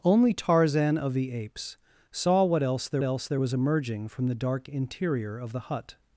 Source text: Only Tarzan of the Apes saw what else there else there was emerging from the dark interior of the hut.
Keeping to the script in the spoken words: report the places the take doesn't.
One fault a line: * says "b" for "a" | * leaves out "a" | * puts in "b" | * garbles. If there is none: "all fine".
all fine